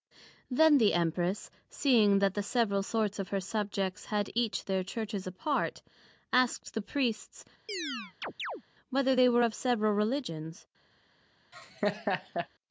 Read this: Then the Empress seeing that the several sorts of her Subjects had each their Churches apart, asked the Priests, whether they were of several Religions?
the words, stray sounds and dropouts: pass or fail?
fail